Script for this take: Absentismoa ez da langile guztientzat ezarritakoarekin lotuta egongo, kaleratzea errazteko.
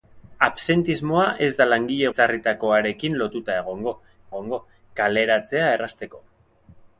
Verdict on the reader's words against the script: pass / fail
fail